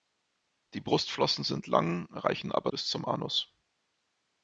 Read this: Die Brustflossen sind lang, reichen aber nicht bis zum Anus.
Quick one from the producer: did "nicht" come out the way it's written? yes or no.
no